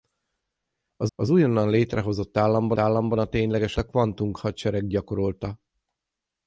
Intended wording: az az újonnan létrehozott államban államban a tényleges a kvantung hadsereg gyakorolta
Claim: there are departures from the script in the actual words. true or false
false